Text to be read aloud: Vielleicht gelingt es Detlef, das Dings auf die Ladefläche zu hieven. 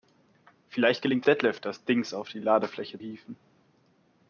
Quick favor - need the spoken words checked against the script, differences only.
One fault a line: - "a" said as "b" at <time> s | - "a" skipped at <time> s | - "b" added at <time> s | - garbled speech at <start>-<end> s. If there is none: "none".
- "es" skipped at 1.2 s
- "zu" skipped at 3.0 s